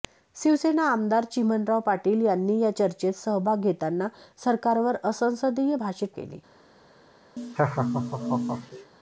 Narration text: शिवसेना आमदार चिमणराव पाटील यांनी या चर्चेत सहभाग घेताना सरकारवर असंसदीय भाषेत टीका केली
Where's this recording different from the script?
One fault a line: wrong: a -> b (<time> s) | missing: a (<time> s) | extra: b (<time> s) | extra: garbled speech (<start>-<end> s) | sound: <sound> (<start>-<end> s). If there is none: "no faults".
missing: टीका (6.1 s)
sound: laugh (7.4-8.9 s)